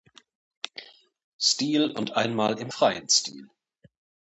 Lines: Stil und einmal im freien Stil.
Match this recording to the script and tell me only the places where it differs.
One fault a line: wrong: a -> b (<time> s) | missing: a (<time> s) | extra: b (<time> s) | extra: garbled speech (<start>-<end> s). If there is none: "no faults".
no faults